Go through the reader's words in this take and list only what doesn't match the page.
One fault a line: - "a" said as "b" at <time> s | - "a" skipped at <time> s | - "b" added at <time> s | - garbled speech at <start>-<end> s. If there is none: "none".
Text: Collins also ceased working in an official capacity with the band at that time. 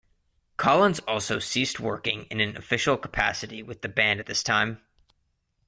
- "that" said as "this" at 4.3 s